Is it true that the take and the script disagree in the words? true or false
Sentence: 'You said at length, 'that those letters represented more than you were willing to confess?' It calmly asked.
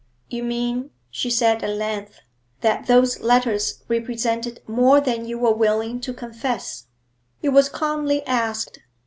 true